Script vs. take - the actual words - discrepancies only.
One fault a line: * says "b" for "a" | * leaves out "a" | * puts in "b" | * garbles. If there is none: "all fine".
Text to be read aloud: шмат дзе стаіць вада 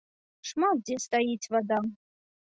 all fine